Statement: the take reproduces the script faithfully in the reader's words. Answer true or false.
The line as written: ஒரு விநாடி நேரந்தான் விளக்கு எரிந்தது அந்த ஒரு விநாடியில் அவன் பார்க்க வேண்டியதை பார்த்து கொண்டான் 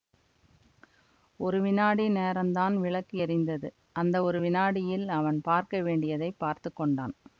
true